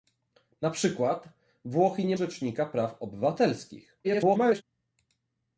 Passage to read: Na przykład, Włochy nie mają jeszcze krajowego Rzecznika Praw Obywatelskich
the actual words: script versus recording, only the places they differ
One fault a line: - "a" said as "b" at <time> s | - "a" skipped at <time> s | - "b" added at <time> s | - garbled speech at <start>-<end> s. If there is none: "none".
- "mają jeszcze krajowego" skipped at 2.2 s
- garbled speech at 4.0-4.6 s